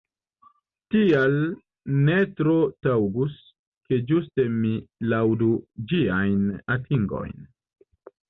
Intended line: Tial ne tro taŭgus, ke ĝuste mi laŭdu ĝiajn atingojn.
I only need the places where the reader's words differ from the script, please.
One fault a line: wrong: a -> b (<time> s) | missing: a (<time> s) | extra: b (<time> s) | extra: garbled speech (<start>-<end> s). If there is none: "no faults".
no faults